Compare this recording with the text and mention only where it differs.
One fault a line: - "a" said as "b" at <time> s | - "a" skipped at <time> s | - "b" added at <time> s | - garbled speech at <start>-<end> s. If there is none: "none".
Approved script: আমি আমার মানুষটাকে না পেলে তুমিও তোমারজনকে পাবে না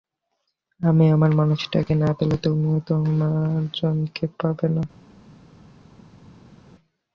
none